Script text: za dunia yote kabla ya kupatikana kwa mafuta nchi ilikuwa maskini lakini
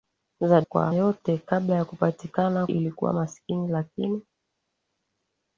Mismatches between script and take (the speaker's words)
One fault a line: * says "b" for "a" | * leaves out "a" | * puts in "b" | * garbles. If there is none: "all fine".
* says "kwa" for "dunia"
* leaves out "kwa mafuta nchi"